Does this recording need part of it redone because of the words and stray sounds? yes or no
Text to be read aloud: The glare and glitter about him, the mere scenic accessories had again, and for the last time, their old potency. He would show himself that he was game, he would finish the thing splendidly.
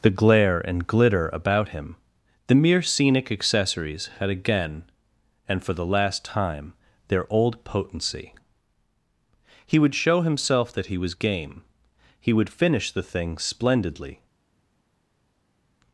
no